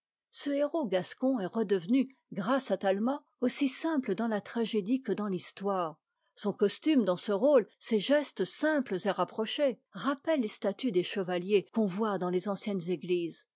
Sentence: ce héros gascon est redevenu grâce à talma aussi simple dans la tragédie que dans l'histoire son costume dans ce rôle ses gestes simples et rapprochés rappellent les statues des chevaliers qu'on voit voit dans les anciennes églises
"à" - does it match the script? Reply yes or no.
yes